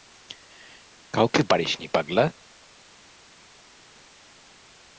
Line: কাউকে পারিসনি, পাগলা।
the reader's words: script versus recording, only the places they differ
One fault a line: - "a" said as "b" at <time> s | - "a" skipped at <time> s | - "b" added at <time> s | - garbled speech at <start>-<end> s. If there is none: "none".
none